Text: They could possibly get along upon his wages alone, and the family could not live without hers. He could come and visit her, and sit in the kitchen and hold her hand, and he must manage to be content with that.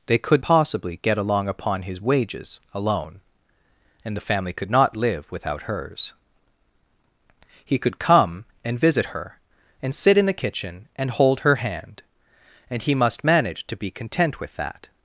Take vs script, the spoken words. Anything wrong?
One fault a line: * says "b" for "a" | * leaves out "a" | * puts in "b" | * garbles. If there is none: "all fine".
all fine